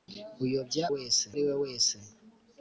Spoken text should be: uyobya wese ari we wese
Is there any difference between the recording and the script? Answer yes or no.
no